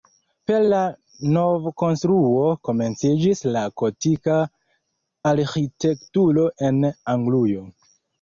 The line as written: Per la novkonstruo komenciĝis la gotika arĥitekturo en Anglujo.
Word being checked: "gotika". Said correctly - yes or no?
yes